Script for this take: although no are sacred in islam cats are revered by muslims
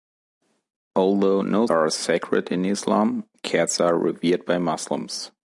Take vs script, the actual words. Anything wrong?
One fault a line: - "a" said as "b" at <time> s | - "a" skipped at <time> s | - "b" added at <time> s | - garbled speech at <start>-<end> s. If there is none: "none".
none